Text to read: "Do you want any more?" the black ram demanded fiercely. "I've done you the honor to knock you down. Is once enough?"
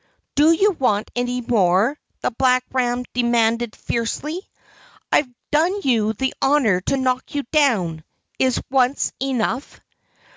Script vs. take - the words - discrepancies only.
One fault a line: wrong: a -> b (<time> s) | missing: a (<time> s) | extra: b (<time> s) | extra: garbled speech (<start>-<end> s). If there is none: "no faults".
no faults